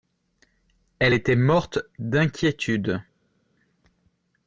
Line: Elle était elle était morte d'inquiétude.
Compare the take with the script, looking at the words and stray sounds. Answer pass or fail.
fail